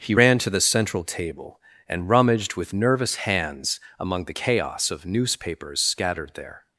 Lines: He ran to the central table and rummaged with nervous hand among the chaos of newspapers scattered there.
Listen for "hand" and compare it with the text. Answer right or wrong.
wrong